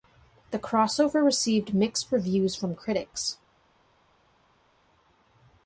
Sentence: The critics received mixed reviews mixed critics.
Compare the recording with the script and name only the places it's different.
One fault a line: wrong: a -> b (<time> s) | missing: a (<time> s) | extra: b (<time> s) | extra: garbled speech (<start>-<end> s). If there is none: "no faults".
wrong: critics -> crossover (0.6 s)
wrong: mixed -> from (2.5 s)